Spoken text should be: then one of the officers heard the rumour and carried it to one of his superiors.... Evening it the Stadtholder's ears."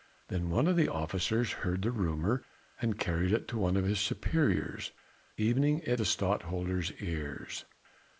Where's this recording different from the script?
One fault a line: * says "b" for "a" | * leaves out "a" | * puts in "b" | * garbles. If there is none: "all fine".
all fine